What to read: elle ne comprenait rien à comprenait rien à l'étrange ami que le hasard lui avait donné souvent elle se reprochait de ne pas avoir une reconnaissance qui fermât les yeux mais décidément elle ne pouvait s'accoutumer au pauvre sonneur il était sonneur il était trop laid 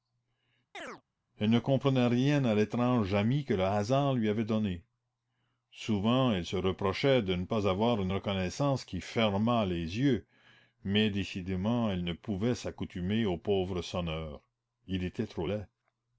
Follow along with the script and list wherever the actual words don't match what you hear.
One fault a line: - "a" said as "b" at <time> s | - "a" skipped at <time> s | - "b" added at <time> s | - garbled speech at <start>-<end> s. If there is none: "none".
- "comprenait rien à" skipped at 2.5 s
- "sonneur il était" skipped at 15.3 s